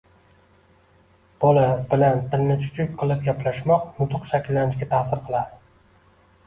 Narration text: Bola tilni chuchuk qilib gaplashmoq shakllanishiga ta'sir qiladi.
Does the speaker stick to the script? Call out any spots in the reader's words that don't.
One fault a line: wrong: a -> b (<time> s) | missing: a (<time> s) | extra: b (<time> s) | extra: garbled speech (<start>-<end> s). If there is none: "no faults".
extra: bilan (1.9 s)
extra: nutq (4.0 s)